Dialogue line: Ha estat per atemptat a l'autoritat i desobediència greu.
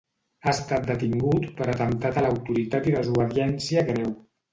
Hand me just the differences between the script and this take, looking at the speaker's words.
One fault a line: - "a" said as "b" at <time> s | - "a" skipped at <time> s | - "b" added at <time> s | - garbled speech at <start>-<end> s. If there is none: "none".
- "detingut" added at 0.9 s